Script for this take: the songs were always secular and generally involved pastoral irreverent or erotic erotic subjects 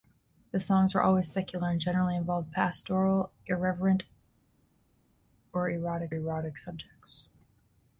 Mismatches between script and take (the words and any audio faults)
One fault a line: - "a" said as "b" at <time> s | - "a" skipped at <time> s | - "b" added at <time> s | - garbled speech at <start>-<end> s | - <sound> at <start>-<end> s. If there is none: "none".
none